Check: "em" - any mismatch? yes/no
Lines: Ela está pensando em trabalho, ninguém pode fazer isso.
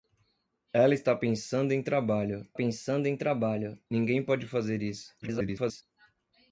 no